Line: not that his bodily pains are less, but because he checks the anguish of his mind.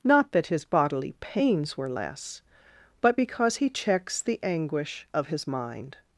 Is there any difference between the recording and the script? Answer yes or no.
yes